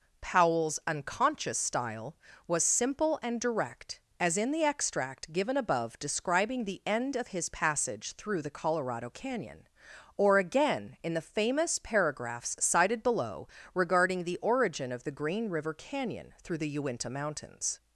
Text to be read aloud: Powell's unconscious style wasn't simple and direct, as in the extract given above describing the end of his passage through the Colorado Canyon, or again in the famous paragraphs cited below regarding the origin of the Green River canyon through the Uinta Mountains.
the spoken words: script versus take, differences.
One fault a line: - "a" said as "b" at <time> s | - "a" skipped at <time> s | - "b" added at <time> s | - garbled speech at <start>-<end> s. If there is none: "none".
- "wasn't" said as "was" at 2.5 s